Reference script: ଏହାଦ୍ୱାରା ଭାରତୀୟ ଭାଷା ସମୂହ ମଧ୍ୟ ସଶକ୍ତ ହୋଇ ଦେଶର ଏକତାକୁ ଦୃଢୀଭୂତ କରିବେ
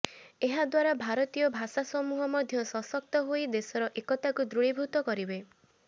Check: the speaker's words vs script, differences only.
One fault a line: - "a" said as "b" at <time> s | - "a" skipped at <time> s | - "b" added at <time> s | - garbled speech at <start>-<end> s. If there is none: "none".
none